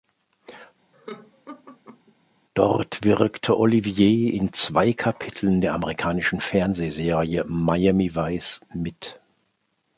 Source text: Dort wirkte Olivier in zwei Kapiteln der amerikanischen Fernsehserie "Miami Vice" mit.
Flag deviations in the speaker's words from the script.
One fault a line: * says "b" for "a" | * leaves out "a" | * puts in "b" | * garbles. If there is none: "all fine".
all fine